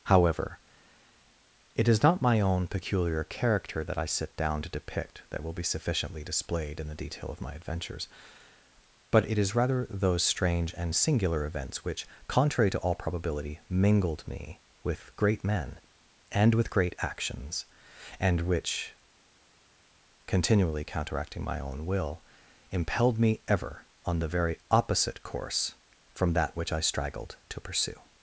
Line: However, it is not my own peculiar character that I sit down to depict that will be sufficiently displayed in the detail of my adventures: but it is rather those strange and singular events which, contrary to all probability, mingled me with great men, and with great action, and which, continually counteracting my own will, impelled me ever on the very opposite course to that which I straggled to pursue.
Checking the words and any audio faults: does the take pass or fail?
fail